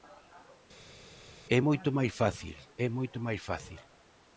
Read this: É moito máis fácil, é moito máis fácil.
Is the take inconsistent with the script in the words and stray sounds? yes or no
no